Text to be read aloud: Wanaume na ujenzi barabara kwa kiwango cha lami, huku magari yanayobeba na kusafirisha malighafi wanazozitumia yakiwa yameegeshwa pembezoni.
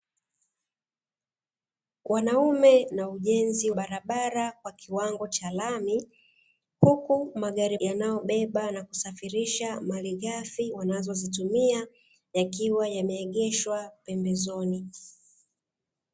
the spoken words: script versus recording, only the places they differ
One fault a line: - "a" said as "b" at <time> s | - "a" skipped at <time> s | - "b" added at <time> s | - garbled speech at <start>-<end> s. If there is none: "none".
none